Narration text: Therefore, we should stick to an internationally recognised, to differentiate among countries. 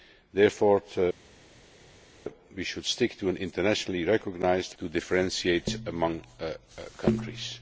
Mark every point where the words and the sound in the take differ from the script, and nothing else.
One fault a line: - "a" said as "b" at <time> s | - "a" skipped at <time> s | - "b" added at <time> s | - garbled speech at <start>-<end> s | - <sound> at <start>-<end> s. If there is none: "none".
none